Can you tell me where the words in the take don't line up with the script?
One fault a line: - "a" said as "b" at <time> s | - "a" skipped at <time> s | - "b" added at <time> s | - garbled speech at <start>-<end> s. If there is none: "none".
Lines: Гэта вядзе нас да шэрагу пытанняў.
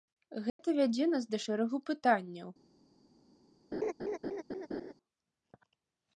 none